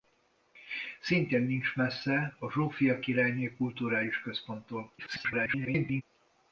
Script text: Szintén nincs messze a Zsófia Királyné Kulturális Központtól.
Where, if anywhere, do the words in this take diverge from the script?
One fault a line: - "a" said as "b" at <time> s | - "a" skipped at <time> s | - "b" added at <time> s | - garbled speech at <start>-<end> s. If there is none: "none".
- garbled speech at 5.0-6.0 s